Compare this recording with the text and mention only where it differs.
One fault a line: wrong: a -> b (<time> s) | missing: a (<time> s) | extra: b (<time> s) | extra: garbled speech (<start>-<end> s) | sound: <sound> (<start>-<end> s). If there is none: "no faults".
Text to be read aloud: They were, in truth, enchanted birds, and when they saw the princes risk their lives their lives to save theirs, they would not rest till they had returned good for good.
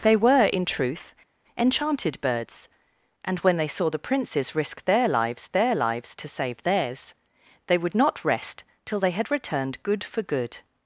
no faults